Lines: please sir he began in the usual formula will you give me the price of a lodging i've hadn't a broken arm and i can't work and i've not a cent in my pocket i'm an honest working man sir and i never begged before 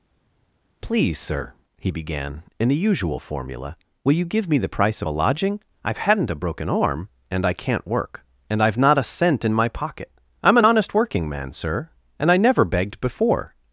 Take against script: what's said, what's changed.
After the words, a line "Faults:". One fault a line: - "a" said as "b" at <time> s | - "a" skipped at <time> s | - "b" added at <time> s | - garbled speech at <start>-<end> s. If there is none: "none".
please sir he began in the usual formula will you give me the price of a lodging i've hadn't a broken arm and i can't work and i've not a cent in my pocket i'm an honest working man sir and i never begged before
Faults:
none